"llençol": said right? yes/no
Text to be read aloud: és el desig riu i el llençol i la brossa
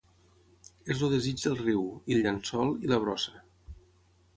yes